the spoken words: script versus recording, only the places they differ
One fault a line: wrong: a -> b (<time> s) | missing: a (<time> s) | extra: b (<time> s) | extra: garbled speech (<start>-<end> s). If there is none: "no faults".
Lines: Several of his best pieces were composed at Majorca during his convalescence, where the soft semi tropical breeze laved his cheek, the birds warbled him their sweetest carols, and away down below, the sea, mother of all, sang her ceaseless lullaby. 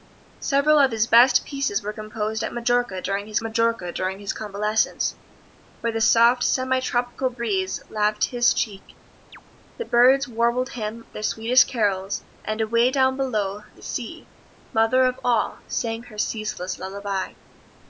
extra: Majorca during his (3.4 s)